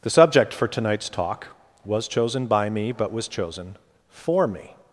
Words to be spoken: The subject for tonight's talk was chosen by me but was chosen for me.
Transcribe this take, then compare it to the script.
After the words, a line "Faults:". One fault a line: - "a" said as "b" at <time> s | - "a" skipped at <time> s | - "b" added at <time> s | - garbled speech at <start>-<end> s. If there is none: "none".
The subject for tonight's talk was chosen by me but was chosen for me.
Faults:
none